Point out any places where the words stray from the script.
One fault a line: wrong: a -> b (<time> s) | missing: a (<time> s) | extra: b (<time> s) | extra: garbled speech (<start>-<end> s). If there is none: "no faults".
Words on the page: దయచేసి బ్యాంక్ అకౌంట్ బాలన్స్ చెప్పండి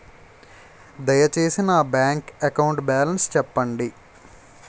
extra: నా (1.6 s)